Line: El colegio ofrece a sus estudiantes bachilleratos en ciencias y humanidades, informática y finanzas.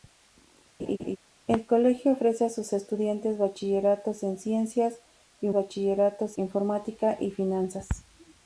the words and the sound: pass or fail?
fail